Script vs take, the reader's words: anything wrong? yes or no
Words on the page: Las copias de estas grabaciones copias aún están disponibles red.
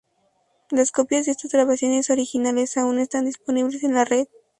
yes